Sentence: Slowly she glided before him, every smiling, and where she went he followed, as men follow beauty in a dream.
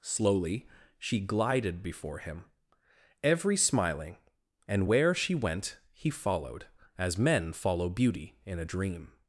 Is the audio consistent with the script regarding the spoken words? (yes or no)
yes